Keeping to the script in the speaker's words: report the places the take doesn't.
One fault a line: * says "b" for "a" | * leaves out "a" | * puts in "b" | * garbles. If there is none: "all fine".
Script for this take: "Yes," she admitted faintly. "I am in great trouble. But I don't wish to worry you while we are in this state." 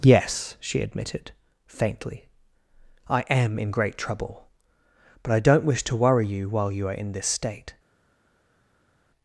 * says "you" for "we"